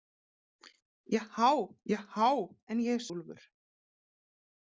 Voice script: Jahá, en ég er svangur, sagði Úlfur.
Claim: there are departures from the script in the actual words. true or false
true